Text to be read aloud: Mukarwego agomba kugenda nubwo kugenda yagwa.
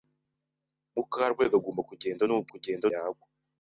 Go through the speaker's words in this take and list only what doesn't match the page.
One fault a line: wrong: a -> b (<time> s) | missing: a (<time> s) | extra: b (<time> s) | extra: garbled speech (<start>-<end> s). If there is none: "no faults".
no faults